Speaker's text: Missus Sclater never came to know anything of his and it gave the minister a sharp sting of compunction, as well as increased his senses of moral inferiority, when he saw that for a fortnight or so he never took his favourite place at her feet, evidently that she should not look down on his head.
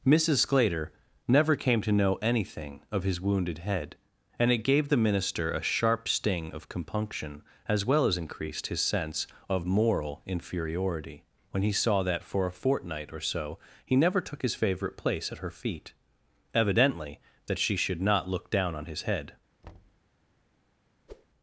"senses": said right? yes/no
no